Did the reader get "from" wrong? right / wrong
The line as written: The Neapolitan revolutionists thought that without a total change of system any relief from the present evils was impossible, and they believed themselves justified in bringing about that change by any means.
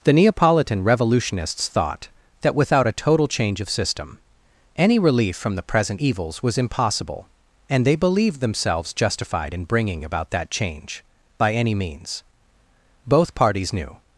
right